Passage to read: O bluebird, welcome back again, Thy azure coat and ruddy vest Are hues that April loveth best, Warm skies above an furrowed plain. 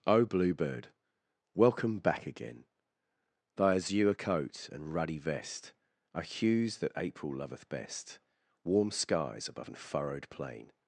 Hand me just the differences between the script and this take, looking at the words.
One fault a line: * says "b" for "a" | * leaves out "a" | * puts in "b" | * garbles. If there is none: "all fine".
all fine